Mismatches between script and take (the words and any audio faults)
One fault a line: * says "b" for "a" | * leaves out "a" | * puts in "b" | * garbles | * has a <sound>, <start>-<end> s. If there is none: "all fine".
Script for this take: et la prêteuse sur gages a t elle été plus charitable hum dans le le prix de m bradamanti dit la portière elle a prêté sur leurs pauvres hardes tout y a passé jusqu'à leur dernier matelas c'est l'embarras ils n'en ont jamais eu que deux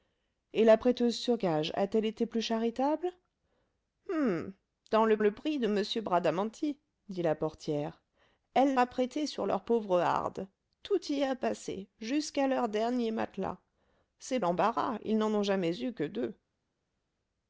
all fine